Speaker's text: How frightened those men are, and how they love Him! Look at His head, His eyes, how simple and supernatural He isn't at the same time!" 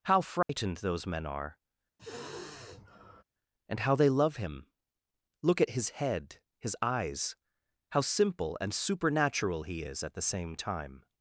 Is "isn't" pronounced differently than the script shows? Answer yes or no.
yes